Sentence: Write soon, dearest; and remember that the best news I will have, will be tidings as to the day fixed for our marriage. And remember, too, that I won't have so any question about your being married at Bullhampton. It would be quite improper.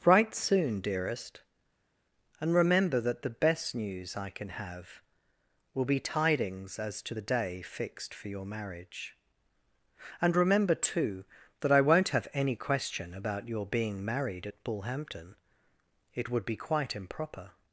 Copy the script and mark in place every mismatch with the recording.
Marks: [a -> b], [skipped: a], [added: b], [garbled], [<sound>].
Write soon, dearest; and remember that the best news I [will -> can] have, will be tidings as to the day fixed for [our -> your] marriage. And remember, too, that I won't have [skipped: so] any question about your being married at Bullhampton. It would be quite improper.